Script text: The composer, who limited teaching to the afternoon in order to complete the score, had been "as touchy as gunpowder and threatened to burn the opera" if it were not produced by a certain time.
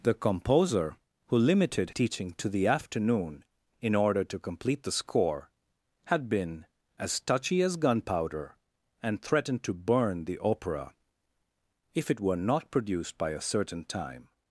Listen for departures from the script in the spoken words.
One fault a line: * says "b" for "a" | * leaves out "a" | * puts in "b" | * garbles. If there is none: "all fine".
all fine